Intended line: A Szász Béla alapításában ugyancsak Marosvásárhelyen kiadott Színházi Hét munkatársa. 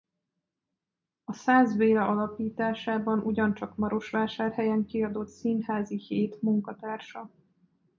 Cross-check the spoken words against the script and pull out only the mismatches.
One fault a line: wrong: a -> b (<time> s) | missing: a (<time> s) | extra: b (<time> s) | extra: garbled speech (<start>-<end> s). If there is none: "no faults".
no faults